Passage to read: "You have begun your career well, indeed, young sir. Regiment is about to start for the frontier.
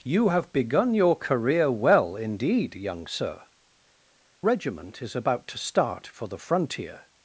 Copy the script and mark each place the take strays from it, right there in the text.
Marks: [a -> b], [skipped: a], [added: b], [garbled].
"You have begun your career well, indeed, young sir. Regiment is about to start for the frontier.